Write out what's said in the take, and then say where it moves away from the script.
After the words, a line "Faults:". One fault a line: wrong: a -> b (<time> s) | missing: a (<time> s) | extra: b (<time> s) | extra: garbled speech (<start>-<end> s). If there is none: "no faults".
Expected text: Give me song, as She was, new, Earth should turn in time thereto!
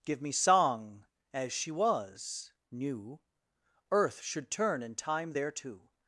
Give me song, as She was, new, Earth should turn in time thereto!
Faults:
no faults